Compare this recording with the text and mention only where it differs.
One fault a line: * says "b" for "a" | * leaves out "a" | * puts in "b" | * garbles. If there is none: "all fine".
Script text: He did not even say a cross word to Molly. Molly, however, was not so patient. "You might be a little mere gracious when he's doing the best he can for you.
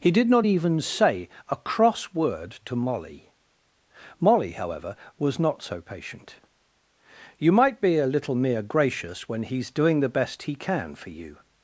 all fine